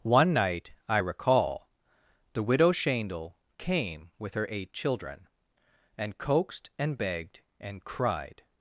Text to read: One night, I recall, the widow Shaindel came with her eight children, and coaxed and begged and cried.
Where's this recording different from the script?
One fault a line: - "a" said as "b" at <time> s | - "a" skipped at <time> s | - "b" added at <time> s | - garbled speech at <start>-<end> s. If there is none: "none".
none